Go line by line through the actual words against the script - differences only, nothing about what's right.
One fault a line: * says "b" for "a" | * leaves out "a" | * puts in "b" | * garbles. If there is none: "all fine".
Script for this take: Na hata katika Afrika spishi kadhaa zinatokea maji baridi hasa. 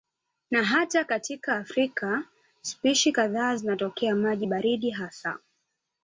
all fine